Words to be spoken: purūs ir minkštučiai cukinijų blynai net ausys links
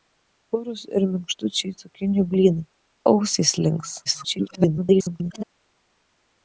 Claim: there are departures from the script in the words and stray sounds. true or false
true